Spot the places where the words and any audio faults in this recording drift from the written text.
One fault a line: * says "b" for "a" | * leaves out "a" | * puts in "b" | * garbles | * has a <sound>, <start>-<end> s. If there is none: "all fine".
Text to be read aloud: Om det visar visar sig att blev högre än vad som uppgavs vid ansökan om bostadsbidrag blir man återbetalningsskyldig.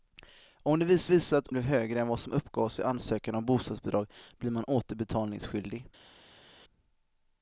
all fine